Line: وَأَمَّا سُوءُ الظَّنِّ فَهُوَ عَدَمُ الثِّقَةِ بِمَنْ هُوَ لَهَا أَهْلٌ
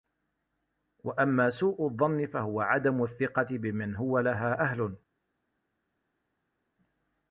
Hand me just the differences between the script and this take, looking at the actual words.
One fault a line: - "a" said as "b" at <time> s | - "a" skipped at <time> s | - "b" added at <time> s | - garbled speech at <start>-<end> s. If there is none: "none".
none